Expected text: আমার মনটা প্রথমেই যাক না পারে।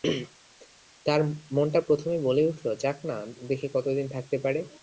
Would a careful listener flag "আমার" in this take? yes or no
yes